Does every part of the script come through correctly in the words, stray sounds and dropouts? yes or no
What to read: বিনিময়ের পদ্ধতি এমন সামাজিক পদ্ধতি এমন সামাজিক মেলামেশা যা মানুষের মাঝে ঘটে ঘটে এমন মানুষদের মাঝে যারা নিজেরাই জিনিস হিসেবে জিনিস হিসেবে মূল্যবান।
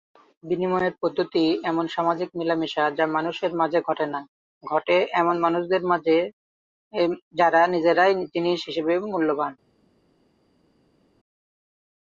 no